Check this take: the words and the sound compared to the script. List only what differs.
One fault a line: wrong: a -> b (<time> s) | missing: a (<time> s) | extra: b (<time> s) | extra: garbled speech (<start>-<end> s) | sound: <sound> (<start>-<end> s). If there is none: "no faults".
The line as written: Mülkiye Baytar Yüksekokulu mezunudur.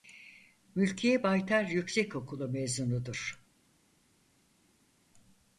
no faults